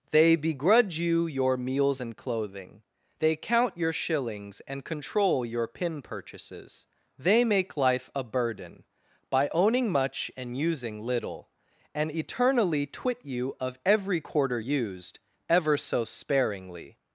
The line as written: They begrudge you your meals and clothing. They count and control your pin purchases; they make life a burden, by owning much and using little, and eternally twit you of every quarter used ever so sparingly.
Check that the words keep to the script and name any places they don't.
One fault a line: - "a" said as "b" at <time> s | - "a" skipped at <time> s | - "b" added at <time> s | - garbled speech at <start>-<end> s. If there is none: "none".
- "your shillings" added at 3.8 s